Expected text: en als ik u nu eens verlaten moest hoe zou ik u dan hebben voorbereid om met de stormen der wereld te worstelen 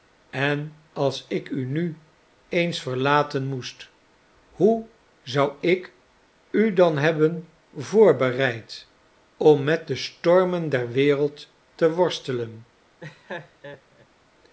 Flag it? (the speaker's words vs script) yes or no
no